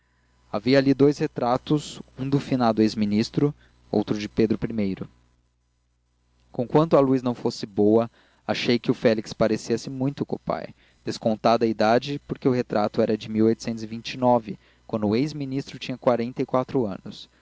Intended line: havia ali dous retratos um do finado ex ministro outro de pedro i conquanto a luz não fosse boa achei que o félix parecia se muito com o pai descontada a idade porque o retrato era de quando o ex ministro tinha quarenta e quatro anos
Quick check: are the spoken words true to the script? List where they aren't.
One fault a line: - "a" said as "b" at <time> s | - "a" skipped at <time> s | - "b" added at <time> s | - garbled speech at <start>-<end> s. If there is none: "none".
none